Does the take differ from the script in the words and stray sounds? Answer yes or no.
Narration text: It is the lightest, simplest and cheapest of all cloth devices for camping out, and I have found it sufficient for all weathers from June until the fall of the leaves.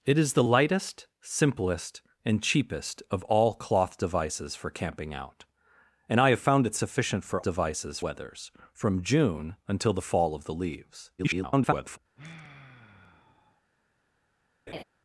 yes